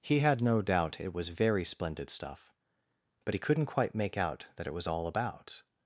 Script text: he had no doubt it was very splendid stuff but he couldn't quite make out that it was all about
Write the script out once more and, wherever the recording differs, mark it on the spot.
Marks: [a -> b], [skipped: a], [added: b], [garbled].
he had no doubt it was very splendid stuff but he couldn't quite make out that it was all about